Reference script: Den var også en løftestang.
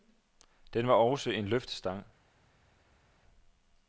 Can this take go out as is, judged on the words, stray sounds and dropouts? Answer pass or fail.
pass